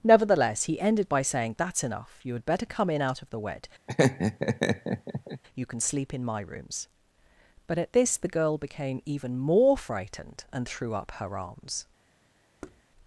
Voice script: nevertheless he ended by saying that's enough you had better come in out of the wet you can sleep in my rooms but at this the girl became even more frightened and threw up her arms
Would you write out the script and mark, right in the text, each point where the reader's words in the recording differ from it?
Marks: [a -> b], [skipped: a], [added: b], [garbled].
nevertheless he ended by saying that's enough you had better come in out of the wet you can sleep in my rooms but at this the girl became even more frightened and threw up her arms